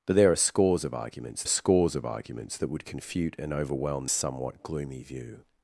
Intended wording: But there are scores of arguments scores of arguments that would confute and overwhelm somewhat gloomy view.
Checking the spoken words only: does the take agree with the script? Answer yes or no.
yes